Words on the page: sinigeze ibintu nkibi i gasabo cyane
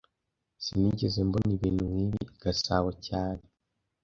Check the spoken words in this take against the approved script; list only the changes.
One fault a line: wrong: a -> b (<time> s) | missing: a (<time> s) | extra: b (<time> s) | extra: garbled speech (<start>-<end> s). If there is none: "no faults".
extra: mbona (1.3 s)